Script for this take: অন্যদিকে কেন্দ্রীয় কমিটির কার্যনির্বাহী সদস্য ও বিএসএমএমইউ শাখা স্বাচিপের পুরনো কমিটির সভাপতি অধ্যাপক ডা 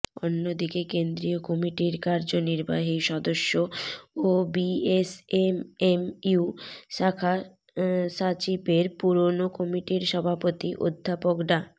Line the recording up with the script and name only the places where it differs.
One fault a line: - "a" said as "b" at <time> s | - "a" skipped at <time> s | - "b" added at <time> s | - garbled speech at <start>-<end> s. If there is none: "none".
none